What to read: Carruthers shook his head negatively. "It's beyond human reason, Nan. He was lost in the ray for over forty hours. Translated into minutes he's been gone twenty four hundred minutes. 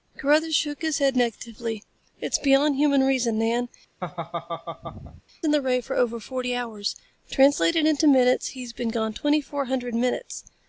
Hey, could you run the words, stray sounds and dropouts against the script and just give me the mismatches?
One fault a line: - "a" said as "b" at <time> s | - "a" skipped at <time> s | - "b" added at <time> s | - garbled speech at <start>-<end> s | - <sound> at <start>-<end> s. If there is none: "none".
- "He was lost" skipped at 3.7 s
- laugh at 4.0-5.2 s